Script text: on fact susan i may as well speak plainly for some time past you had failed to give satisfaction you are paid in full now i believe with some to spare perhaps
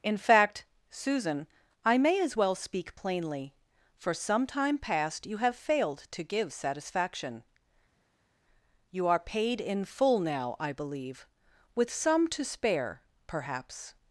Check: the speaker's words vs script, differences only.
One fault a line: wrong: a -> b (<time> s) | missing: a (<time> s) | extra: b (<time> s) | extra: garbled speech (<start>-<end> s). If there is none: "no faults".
wrong: on -> in (0.0 s)
wrong: had -> have (5.4 s)